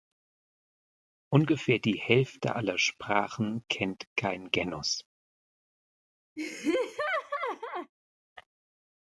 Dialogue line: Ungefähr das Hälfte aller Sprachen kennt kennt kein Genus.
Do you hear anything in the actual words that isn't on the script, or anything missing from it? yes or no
yes